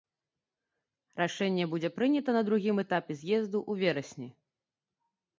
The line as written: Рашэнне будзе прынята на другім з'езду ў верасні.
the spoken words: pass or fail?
fail